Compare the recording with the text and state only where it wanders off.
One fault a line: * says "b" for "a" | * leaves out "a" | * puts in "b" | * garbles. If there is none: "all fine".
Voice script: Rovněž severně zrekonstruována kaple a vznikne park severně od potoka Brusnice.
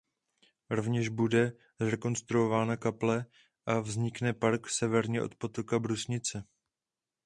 * says "bude" for "severně"